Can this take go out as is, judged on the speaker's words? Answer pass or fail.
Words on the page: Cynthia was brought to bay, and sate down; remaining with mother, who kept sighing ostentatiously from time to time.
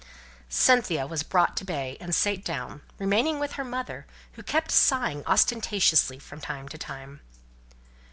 fail